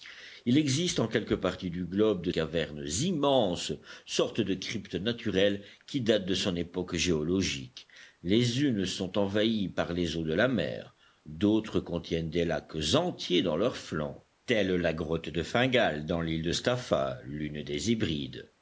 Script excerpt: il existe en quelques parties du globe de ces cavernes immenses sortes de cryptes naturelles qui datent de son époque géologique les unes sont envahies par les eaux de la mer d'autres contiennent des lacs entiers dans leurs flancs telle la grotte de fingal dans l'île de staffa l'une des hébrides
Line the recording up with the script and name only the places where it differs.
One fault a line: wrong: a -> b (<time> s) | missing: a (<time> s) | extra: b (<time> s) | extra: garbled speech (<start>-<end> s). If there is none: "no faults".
missing: ces (2.3 s)